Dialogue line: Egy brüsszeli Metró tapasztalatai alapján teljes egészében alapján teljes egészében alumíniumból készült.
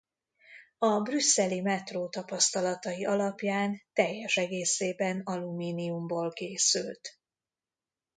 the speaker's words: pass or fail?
fail